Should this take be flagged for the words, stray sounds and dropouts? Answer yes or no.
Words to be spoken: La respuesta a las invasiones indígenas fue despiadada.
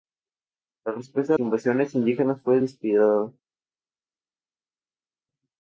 yes